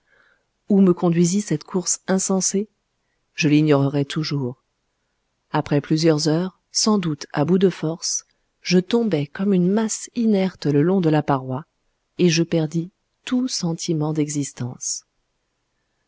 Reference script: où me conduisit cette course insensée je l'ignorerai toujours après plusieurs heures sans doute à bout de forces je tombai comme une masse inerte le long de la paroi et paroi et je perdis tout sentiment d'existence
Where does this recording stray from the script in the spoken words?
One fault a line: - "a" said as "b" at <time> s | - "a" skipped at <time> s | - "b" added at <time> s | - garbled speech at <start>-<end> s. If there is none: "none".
- "paroi et" skipped at 12.3 s